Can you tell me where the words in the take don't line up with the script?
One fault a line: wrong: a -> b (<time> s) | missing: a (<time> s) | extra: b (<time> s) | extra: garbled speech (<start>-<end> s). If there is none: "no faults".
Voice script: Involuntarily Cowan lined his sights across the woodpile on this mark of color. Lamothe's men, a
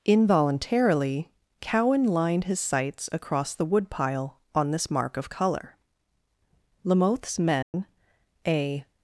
no faults